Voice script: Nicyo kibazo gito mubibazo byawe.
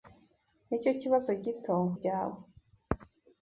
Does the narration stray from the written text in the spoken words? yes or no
yes